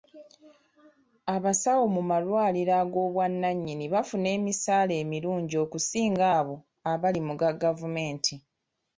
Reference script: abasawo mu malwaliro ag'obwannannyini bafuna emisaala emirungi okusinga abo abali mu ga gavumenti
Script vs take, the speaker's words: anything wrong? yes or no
no